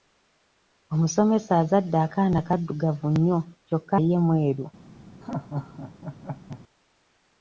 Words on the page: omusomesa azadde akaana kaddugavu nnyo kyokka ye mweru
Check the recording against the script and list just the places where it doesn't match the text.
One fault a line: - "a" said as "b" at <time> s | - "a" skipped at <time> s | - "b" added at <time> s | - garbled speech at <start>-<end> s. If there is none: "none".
none